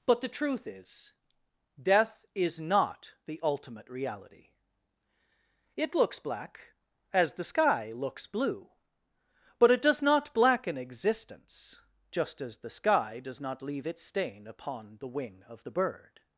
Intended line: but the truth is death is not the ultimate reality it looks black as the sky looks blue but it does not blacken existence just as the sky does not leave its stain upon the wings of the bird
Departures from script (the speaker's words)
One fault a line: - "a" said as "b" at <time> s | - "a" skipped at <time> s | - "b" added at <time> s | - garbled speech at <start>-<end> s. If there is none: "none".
- "wings" said as "wing" at 15.1 s